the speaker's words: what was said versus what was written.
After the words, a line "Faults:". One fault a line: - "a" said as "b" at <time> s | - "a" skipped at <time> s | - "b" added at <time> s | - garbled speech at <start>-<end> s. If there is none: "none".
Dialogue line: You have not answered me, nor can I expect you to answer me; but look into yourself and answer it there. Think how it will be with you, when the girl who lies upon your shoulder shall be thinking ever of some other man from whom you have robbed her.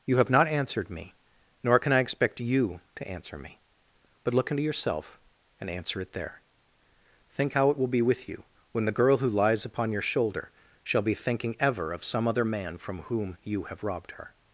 You have not answered me, nor can I expect you to answer me; but look into yourself and answer it there. Think how it will be with you, when the girl who lies upon your shoulder shall be thinking ever of some other man from whom you have robbed her.
Faults:
none